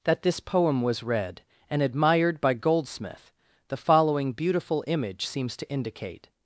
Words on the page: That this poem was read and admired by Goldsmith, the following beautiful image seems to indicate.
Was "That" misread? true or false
false